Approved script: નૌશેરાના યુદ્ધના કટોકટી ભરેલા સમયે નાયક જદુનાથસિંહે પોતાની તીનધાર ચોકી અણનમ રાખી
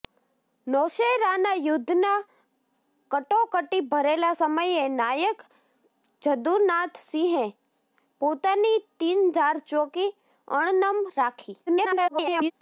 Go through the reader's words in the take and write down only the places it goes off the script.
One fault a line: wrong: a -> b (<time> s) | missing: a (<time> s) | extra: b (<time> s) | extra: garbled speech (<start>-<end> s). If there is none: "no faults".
extra: garbled speech (11.7-12.5 s)